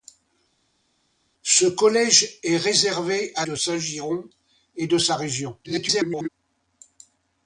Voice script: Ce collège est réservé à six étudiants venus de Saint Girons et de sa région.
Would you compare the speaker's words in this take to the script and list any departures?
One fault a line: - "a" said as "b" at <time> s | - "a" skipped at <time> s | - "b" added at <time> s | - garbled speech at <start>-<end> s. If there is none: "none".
- "six étudiants venus" skipped at 3.4 s
- garbled speech at 5.6-6.3 s